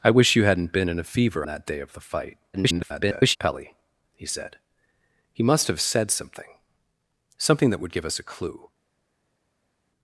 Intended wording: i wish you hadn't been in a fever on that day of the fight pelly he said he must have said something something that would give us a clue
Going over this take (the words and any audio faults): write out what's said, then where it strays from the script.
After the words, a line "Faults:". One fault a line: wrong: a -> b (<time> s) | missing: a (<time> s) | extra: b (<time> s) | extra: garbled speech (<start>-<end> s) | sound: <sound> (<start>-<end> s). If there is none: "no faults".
i wish you hadn't been in a fever that day of the fight [garbled] pelly he said he must have said something something that would give us a clue
Faults:
missing: on (1.4 s)
extra: garbled speech (2.5-3.4 s)